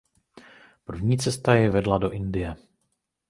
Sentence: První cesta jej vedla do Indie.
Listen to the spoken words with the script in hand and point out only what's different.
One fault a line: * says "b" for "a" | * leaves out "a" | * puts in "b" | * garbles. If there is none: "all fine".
all fine